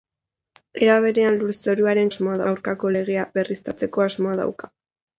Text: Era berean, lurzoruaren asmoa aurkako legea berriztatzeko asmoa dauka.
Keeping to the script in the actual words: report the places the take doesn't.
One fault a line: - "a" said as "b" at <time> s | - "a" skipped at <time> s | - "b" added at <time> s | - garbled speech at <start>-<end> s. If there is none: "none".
none